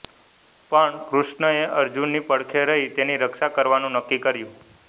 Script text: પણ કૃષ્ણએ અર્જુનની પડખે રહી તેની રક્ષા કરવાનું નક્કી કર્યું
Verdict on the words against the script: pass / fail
pass